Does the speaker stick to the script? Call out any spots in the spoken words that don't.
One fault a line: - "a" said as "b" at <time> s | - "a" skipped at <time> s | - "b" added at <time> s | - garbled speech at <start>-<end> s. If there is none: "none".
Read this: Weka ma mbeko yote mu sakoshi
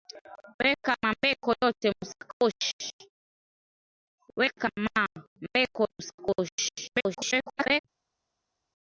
- "yote" skipped at 1.5 s
- garbled speech at 6.9-7.8 s